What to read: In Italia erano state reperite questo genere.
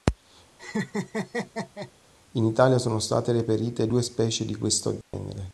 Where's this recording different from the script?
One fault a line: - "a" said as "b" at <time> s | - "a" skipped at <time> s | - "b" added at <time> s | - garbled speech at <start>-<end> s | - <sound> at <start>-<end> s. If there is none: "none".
- laugh at 0.6-1.9 s
- "erano" said as "sono" at 2.8 s
- "due specie di" added at 3.9 s
- dropout at 5.0-5.1 s